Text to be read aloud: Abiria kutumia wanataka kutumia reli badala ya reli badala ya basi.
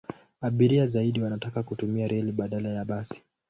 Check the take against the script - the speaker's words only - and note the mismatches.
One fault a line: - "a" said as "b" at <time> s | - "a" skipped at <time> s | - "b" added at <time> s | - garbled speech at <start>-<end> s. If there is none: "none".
- "kutumia" said as "zaidi" at 0.9 s
- "reli badala ya" skipped at 2.9 s